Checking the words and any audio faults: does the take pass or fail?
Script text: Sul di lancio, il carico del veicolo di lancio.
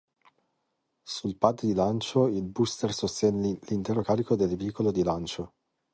fail